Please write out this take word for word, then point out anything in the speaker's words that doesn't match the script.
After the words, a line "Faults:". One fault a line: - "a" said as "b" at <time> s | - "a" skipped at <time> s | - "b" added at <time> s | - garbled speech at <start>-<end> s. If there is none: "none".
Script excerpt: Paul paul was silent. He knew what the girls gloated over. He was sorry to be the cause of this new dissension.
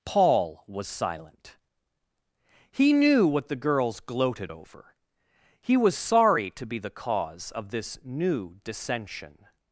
Paul was silent. He knew what the girls gloated over. He was sorry to be the cause of this new dissension.
Faults:
- "paul" skipped at 0.6 s